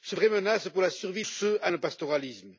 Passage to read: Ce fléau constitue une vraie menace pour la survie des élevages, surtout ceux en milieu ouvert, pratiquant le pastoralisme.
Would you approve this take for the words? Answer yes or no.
no